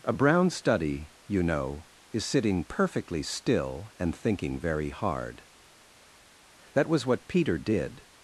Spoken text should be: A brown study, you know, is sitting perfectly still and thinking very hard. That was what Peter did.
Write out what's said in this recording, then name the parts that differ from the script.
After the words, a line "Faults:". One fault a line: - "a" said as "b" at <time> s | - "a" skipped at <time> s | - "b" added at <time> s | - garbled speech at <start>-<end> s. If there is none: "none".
A brown study, you know, is sitting perfectly still and thinking very hard. That was what Peter did.
Faults:
none